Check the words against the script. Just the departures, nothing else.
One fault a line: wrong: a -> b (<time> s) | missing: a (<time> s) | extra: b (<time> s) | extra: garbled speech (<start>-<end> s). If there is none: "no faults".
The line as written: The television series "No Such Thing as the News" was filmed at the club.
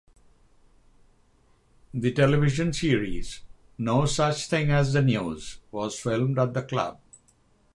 no faults